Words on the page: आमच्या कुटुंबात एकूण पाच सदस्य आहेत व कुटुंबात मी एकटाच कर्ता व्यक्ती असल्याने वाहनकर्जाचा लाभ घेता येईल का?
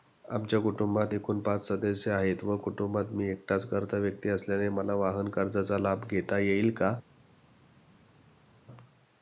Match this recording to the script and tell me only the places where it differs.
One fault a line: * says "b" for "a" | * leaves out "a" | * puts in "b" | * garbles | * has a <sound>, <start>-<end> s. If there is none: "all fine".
* puts in "मला"